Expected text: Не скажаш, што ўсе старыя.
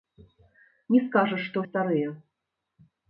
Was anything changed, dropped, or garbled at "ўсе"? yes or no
yes